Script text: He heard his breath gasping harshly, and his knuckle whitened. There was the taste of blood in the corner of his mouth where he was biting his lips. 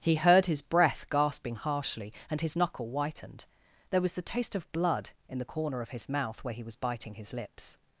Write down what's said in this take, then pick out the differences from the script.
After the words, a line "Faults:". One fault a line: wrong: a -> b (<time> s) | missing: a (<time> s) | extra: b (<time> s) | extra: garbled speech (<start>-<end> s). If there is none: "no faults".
He heard his breath gasping harshly, and his knuckle whitened. There was the taste of blood in the corner of his mouth where he was biting his lips.
Faults:
no faults